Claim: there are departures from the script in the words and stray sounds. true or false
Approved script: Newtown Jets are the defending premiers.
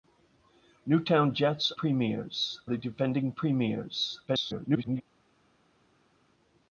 true